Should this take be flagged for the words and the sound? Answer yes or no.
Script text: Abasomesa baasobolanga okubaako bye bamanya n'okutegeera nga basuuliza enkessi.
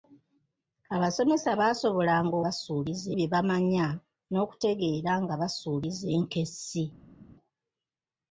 yes